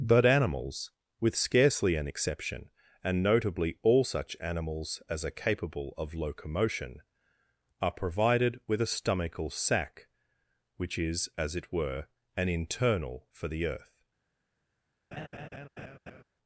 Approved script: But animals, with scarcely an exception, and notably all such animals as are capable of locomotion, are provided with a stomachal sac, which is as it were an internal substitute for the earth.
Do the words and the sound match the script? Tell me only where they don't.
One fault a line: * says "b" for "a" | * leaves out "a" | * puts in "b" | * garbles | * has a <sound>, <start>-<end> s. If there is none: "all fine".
* leaves out "substitute"
* has a laugh, 15.1-16.2 s